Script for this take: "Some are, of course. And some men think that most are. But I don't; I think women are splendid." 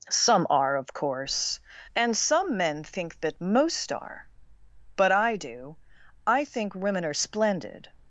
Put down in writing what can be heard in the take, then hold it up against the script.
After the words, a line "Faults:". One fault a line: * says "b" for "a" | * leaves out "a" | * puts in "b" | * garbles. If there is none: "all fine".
"Some are, of course. And some men think that most are. But I do; I think women are splendid."
Faults:
* says "do" for "don't"